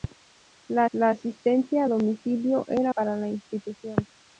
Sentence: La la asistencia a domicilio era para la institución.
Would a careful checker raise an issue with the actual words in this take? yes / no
no